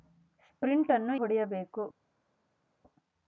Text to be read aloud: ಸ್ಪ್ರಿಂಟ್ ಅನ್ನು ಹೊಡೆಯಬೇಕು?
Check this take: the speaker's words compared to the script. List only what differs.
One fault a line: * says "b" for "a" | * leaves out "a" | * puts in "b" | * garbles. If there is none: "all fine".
all fine